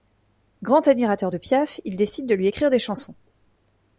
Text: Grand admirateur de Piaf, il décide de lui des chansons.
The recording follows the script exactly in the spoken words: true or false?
false